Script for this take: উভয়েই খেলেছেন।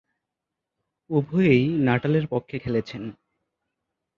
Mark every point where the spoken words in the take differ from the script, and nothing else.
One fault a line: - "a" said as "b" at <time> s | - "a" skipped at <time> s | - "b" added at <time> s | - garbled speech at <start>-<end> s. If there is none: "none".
- "নাটালের পক্ষে" added at 1.8 s